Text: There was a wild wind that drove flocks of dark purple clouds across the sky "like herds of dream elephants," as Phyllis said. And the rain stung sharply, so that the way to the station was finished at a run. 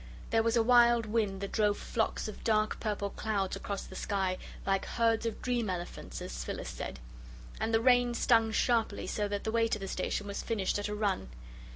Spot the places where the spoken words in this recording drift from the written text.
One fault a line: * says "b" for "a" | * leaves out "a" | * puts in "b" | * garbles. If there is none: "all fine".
all fine